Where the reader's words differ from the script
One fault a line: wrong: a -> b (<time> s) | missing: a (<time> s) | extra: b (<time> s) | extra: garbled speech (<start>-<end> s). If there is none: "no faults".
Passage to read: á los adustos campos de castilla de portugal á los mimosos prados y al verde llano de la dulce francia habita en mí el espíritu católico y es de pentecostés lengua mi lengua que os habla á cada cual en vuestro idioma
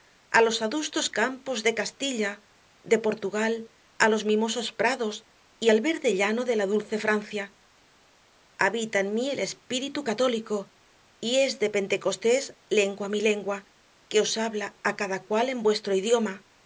no faults